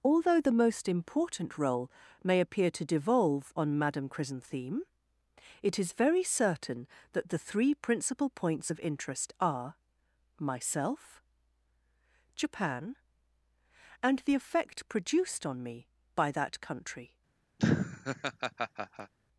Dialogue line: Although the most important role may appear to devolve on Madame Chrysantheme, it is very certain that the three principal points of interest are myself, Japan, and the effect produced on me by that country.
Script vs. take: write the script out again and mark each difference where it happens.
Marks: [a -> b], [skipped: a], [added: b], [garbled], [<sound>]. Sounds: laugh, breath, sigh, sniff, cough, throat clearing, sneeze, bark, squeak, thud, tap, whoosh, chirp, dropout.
Although the most important role may appear to devolve on Madame Chrysantheme, it is very certain that the three principal points of interest are myself, Japan, and the effect produced on me by that country. [laugh]